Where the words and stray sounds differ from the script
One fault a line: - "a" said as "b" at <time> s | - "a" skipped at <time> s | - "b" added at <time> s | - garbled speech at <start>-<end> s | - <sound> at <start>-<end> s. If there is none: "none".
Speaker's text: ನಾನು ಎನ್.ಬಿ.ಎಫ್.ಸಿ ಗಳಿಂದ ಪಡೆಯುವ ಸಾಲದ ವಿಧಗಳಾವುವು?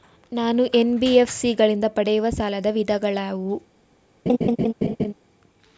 - laugh at 4.3-5.1 s